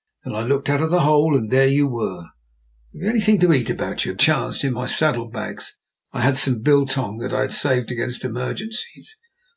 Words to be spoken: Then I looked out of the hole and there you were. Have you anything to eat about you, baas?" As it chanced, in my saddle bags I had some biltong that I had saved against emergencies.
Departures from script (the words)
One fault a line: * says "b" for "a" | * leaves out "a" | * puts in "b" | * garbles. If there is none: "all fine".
* leaves out "baas As it"